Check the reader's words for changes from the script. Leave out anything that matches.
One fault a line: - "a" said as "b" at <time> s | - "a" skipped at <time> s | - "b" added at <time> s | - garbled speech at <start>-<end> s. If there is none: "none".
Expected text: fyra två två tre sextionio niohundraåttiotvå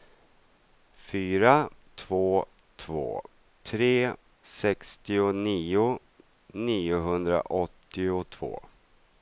none